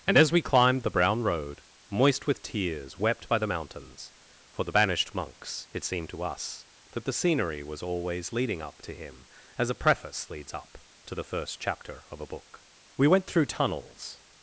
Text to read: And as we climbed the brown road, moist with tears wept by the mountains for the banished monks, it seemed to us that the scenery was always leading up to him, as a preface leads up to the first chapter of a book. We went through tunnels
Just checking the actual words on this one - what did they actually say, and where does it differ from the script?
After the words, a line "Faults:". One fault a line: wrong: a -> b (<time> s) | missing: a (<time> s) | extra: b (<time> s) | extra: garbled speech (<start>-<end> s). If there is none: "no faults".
And as we climbed the brown road, moist with tears wept by the mountains for the banished monks, it seemed to us that the scenery was always leading up to him, as a preface leads up to the first chapter of a book. We went through tunnels
Faults:
no faults